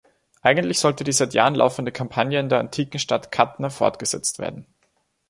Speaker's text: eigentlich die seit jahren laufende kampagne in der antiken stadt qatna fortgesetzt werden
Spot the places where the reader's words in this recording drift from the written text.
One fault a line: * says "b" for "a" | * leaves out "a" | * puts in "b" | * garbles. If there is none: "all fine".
* puts in "sollte"